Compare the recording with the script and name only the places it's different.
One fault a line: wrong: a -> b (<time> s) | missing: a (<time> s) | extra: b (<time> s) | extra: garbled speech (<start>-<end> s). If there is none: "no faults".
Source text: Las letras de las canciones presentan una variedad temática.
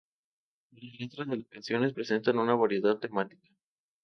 no faults